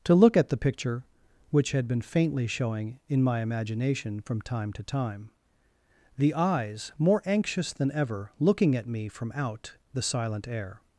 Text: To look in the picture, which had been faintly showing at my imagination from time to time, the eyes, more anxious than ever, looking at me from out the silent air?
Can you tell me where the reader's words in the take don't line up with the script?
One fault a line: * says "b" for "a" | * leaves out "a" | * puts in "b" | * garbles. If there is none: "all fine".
* says "at" for "in"
* says "in" for "at"